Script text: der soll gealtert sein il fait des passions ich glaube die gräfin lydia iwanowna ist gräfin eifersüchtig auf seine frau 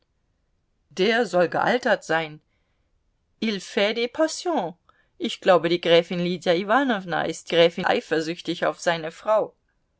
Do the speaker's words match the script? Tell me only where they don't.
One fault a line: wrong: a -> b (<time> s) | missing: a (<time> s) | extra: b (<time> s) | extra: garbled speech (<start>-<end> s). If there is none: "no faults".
no faults